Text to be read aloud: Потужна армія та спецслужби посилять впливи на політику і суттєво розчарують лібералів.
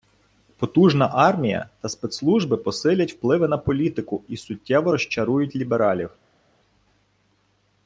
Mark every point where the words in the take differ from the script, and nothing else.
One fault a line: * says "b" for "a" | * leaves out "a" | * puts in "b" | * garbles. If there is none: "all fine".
all fine